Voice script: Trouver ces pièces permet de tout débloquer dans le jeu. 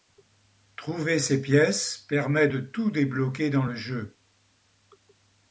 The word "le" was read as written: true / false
true